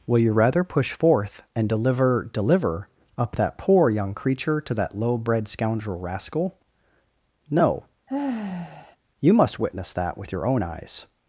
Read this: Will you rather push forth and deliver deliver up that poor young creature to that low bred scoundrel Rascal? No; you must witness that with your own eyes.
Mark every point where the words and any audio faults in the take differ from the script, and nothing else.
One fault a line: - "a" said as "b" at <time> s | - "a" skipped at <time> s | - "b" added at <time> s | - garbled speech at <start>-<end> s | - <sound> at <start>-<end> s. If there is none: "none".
- sigh at 8.1-9.0 s